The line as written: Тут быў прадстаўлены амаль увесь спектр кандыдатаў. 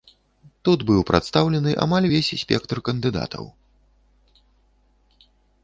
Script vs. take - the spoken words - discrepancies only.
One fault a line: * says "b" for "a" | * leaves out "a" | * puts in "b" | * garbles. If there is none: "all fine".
all fine